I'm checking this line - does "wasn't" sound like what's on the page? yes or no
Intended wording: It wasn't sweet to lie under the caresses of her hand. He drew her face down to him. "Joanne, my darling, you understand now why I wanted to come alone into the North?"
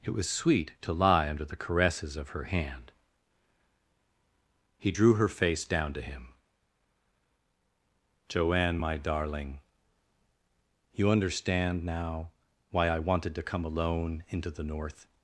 no